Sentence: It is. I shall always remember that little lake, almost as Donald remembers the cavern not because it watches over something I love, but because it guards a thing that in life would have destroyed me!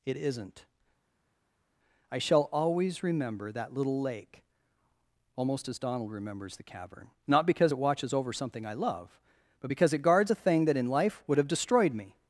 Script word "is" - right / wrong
wrong